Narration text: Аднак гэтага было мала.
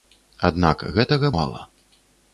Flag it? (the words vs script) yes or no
yes